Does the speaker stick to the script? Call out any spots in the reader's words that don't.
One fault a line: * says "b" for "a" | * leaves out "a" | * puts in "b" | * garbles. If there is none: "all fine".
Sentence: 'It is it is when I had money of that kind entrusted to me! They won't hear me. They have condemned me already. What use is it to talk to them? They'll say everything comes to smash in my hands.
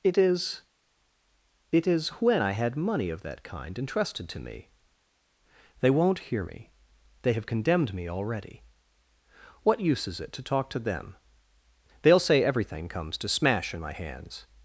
all fine